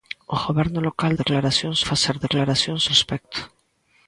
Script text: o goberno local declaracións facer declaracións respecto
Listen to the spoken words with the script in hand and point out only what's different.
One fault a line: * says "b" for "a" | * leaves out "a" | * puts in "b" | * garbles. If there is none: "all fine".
all fine